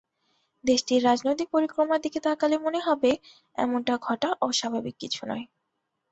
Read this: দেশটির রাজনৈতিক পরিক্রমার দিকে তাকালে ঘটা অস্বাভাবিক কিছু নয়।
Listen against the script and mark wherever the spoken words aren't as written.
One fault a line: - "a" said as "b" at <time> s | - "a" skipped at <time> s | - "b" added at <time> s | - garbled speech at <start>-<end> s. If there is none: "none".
- "মনে হবে এমনটা" added at 2.6 s